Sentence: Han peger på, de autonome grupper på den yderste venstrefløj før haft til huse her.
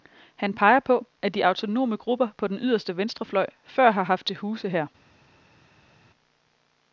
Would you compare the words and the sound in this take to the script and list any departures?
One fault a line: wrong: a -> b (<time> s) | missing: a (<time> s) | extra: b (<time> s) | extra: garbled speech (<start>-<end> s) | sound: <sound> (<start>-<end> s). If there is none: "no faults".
extra: at (1.2 s)
extra: har (3.9 s)